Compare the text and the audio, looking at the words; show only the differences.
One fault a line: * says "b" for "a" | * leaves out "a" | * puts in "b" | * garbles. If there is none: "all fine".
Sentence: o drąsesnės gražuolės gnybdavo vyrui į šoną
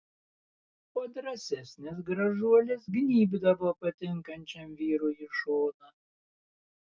* puts in "patinkančiam"